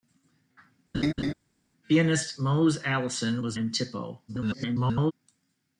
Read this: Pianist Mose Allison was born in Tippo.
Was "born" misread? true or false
true